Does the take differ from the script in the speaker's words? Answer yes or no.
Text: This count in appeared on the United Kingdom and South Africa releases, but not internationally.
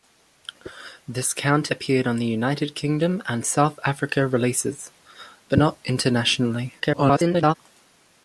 yes